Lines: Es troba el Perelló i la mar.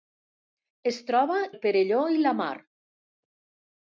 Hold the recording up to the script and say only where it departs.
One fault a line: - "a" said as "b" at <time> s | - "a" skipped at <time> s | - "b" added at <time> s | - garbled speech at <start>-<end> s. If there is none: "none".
none